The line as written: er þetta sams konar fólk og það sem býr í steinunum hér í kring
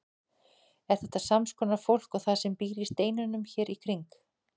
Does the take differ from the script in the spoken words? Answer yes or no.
no